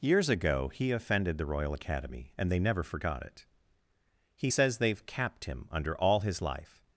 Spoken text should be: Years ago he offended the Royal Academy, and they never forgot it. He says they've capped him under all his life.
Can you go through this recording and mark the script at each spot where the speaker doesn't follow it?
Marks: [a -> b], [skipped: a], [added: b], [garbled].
Years ago he offended the Royal Academy, and they never forgot it. He says they've capped him under all his life.